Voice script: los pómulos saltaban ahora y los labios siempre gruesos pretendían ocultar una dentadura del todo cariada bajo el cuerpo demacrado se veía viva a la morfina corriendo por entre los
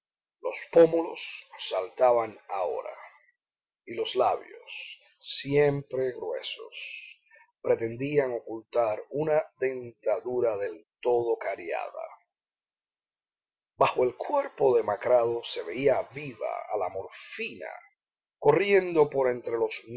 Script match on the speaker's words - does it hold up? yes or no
yes